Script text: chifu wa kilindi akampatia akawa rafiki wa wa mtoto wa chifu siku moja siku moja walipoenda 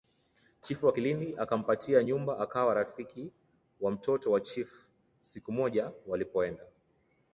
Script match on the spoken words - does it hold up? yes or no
no